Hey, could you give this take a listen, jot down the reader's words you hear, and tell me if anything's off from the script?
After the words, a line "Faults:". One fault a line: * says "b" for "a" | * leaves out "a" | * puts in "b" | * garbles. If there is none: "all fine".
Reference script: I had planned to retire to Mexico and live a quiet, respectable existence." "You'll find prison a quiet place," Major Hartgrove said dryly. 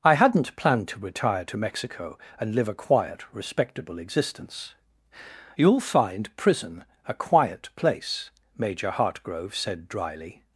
I hadn't planned to retire to Mexico and live a quiet, respectable existence." "You'll find prison a quiet place," Major Hartgrove said dryly.
Faults:
* says "hadn't" for "had"